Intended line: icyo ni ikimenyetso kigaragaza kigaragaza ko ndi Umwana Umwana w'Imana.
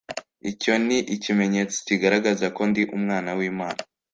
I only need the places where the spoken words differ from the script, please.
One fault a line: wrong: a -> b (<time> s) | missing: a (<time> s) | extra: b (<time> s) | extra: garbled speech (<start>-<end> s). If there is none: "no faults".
missing: kigaragaza (2.5 s)
missing: Umwana (3.3 s)